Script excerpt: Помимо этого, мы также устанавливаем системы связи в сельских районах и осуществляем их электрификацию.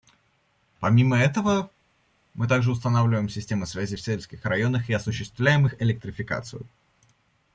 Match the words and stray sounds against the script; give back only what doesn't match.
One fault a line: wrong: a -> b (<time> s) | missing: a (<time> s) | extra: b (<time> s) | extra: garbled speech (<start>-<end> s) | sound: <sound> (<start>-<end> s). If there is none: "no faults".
no faults